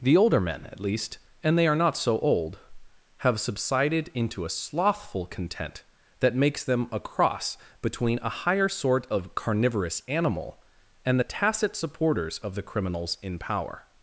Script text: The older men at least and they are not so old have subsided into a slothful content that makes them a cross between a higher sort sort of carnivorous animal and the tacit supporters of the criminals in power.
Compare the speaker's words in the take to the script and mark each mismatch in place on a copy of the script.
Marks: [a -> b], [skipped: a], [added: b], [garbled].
The older men at least and they are not so old have subsided into a slothful content that makes them a cross between a higher sort [skipped: sort] of carnivorous animal and the tacit supporters of the criminals in power.